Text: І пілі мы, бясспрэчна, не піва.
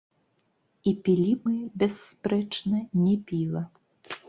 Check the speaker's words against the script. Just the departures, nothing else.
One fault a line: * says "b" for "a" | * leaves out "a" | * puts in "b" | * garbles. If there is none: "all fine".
all fine